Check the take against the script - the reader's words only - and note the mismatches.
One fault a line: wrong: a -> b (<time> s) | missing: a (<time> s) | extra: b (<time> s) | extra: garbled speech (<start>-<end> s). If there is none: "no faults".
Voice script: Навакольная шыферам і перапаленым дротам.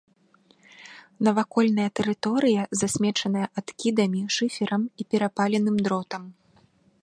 extra: тэрыторыя засмечаная адкідамі (2.0 s)